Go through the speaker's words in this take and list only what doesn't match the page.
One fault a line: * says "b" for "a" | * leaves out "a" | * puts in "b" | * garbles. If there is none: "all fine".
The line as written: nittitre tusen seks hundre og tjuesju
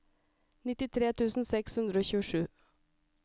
all fine